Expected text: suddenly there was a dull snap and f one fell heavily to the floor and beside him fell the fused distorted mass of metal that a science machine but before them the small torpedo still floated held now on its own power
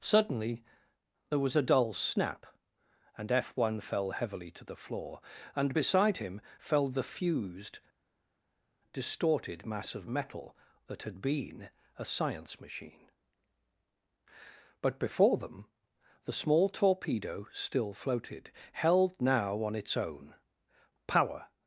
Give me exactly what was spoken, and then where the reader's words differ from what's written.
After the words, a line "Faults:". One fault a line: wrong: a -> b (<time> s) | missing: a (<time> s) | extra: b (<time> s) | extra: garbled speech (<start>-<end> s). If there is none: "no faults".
suddenly there was a dull snap and f one fell heavily to the floor and beside him fell the fused distorted mass of metal that had been a science machine but before them the small torpedo still floated held now on its own power
Faults:
extra: had been (11.0 s)